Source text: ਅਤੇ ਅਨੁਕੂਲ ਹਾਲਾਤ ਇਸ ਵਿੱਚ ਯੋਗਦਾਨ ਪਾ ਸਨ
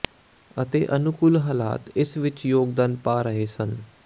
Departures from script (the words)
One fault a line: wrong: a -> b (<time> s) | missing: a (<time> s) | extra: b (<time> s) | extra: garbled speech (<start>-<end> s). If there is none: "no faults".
extra: ਰਹੇ (3.2 s)